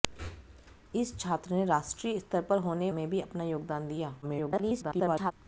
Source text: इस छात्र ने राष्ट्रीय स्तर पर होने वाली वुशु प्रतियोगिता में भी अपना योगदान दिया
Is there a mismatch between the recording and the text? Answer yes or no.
yes